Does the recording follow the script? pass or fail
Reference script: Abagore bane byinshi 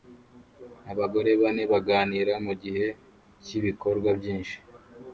fail